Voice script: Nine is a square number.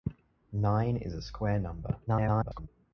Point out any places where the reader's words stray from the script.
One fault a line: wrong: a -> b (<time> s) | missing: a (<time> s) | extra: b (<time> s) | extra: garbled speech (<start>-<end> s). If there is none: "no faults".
extra: garbled speech (2.1-2.7 s)